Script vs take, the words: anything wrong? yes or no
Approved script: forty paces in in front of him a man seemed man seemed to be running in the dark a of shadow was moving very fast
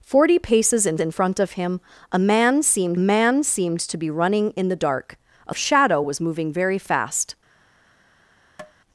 no